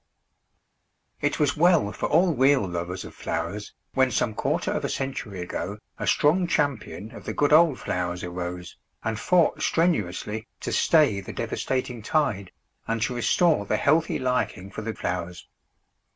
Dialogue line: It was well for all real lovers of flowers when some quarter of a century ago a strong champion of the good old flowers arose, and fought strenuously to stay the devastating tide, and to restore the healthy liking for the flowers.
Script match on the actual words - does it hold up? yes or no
yes